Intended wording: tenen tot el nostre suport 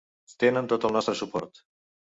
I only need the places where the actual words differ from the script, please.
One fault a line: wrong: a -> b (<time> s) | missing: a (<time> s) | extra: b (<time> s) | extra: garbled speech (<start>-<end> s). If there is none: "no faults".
no faults